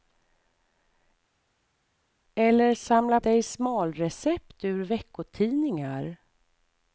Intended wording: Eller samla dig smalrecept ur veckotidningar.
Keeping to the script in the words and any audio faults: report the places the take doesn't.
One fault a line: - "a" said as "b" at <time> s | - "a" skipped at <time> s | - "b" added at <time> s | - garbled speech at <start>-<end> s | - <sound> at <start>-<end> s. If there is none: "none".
none